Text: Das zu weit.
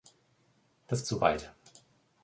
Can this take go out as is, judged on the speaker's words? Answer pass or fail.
pass